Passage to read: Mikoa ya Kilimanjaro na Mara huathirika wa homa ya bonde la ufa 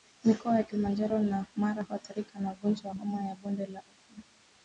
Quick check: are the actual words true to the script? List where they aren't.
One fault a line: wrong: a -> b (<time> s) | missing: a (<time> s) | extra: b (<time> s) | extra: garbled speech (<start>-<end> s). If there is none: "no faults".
extra: na ugonjwa (2.4 s)